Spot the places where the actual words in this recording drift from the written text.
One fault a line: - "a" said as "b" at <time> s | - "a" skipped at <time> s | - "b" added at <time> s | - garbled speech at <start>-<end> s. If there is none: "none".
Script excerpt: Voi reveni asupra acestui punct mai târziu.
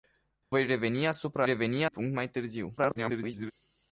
- "acestui" said as "reveni" at 1.4 s
- garbled speech at 2.8-3.5 s